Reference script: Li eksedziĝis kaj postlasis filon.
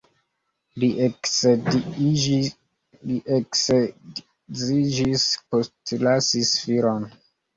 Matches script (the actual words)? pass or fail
fail